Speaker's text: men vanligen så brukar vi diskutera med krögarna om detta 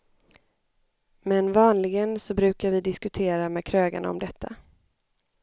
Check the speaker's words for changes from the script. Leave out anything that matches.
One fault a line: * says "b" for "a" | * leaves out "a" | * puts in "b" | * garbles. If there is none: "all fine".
all fine